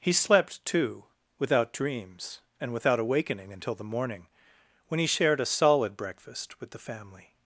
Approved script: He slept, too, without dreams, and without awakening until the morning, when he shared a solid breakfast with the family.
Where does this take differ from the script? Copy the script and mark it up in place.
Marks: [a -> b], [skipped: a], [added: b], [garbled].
He slept, too, without dreams, and without awakening until the morning, when he shared a solid breakfast with the family.